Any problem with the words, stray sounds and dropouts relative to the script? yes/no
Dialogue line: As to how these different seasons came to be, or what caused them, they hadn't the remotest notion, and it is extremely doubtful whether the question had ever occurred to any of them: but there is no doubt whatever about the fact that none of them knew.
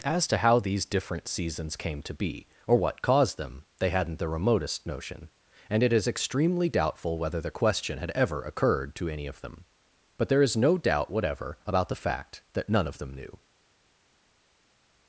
no